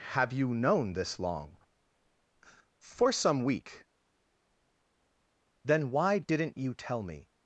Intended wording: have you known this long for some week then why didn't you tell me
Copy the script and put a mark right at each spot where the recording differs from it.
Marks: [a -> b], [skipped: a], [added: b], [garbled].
have you known this long for some week then why didn't you tell me